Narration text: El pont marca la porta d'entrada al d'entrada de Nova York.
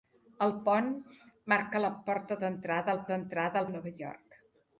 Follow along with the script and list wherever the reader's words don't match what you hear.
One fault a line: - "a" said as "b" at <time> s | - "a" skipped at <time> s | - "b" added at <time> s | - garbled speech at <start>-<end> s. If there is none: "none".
none